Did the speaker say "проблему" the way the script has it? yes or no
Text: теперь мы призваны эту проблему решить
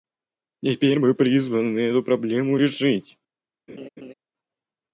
yes